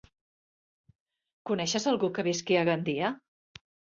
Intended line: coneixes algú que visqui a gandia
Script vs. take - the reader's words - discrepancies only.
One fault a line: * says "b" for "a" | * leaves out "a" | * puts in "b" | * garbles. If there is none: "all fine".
all fine